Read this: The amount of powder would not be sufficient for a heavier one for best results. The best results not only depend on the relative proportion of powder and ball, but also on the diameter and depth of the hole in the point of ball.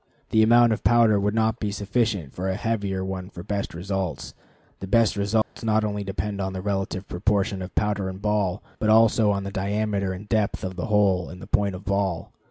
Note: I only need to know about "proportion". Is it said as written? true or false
true